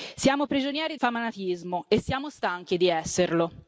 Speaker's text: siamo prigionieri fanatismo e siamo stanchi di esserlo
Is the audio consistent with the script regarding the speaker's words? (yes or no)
yes